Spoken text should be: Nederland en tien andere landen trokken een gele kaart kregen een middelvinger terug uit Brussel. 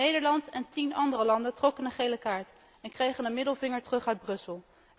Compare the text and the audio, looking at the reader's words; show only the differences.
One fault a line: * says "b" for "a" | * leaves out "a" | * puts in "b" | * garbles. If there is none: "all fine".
* puts in "en"